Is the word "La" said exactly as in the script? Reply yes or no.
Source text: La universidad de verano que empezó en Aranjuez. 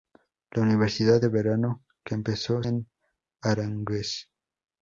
yes